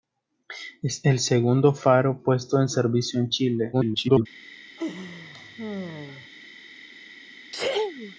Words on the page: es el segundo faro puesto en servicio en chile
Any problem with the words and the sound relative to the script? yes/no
yes